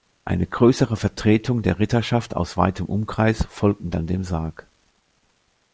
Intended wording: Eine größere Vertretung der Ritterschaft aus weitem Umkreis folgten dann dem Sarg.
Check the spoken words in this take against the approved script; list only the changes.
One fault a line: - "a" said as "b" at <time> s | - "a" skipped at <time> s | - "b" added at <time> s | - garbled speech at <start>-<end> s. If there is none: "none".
none